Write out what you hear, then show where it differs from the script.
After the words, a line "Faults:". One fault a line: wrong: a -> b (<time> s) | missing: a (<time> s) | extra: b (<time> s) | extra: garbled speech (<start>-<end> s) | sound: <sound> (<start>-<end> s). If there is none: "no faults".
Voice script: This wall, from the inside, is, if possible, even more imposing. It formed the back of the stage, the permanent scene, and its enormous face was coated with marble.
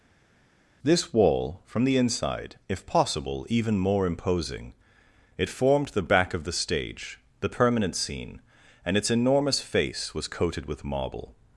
This wall, from the inside, if possible, even more imposing. It formed the back of the stage, the permanent scene, and its enormous face was coated with marble.
Faults:
missing: is (2.5 s)